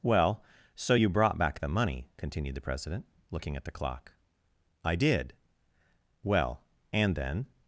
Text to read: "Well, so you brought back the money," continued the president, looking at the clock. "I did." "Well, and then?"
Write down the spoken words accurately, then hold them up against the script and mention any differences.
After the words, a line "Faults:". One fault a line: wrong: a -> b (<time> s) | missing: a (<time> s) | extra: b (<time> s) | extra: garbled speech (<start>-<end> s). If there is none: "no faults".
"Well, so you brought back the money," continued the president, looking at the clock. "I did." "Well, and then?"
Faults:
no faults